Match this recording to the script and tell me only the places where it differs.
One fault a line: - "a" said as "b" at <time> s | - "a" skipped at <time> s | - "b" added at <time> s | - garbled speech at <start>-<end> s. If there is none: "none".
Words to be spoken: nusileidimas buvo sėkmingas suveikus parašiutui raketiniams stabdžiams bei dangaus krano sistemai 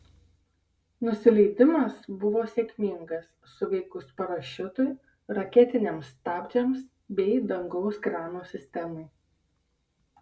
none